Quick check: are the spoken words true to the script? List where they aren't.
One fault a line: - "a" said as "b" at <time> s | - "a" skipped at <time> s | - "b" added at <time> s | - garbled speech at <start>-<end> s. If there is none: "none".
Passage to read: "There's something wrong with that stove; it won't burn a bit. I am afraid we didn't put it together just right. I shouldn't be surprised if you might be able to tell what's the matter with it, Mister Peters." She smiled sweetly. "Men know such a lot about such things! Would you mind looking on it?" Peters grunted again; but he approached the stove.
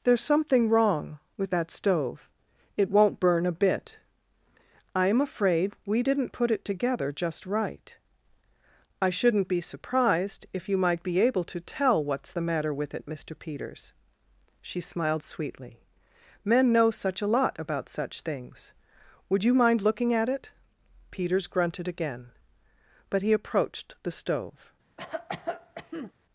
- "on" said as "at" at 20.1 s